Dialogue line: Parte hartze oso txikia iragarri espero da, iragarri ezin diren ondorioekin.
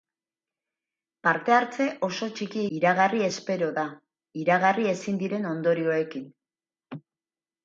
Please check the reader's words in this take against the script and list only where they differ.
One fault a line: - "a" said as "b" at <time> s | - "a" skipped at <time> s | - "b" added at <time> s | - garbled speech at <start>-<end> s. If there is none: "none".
none